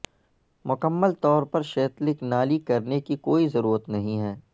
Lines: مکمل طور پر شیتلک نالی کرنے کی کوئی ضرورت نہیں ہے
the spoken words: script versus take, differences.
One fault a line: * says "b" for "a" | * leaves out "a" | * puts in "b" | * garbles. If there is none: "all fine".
all fine